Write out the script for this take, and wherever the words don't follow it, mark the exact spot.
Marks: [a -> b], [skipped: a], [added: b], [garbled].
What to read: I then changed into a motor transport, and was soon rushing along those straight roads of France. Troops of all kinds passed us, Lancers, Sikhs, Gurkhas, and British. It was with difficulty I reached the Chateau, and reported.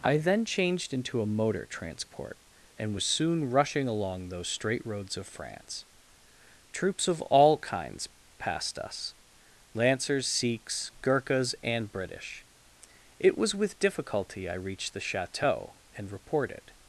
I then changed into a motor transport, and was soon rushing along those straight roads of France. Troops of all kinds passed us, Lancers, Sikhs, Gurkhas, and British. It was with difficulty I reached the Chateau, and reported.